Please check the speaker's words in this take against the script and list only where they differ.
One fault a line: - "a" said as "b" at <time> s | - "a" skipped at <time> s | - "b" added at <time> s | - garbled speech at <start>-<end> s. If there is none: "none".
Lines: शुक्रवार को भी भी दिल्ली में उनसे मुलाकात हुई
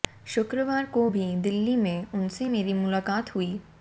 - "भी" skipped at 1.2 s
- "मेरी" added at 2.5 s